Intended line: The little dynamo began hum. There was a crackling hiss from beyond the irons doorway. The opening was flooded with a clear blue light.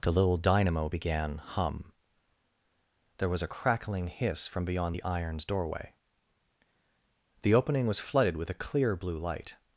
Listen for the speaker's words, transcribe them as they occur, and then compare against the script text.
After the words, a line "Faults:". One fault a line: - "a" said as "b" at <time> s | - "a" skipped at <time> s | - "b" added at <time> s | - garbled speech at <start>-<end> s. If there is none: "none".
The little dynamo began hum. There was a crackling hiss from beyond the irons doorway. The opening was flooded with a clear blue light.
Faults:
none